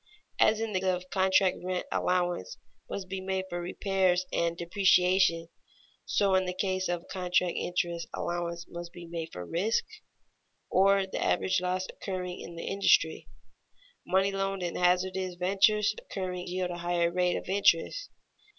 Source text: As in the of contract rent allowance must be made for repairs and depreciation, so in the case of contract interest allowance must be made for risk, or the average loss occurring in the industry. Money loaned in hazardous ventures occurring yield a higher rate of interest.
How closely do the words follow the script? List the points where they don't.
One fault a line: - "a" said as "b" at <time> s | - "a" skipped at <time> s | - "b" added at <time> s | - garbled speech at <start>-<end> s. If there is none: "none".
none